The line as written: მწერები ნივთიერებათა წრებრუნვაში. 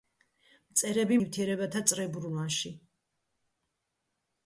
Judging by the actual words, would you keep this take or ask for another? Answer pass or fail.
pass